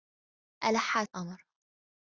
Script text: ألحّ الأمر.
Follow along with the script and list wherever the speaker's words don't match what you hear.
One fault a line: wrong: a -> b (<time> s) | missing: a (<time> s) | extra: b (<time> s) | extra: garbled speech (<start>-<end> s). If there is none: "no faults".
no faults